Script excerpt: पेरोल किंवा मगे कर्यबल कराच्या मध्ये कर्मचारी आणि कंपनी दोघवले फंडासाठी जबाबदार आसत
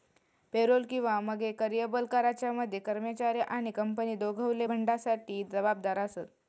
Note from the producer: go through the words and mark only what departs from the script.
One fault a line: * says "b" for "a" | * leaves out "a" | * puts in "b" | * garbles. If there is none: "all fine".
all fine